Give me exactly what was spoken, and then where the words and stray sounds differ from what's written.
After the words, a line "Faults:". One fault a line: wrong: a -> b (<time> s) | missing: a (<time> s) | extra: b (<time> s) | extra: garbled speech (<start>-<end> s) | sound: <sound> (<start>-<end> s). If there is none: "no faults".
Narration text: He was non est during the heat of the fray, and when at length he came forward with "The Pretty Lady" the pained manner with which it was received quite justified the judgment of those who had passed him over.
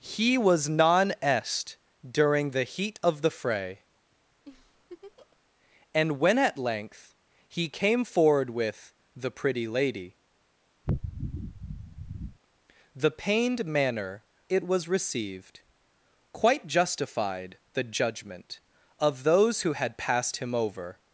He was non est during the heat of the fray, and when at length he came forward with "The Pretty Lady" the pained manner it was received quite justified the judgment of those who had passed him over.
Faults:
sound: laugh (4.4-5.4 s)
sound: sniff (10.8-12.4 s)
missing: with which (14.2 s)